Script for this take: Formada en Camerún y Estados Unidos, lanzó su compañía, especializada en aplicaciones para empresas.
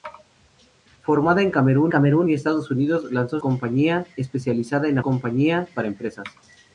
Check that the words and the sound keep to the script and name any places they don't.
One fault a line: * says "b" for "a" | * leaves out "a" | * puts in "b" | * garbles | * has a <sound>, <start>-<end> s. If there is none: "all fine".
* puts in "Camerún"
* leaves out "su"
* says "compañía" for "aplicaciones"